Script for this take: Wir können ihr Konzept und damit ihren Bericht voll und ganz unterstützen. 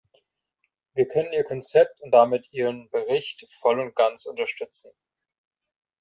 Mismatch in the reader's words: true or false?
false